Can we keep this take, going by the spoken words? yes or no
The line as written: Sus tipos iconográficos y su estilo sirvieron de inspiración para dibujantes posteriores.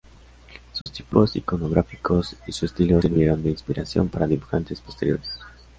yes